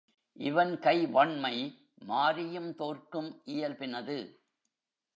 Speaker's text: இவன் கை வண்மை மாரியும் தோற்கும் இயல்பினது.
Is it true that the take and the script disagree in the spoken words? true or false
false